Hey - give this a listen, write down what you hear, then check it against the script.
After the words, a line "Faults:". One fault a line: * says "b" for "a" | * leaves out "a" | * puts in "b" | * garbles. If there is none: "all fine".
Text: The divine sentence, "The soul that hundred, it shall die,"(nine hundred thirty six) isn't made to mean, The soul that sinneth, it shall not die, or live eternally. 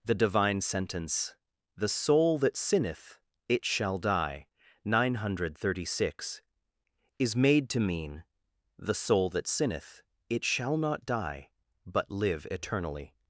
The divine sentence, "The soul that sinneth, it shall die,"(nine hundred thirty six) is made to mean, The soul that sinneth, it shall not die, but live eternally.
Faults:
* says "sinneth" for "hundred"
* says "is" for "isn't"
* says "but" for "or"